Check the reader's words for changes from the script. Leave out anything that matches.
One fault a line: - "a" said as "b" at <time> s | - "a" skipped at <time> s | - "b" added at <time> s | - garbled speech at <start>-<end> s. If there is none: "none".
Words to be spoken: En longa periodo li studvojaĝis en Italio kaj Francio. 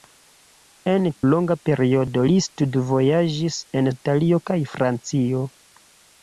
none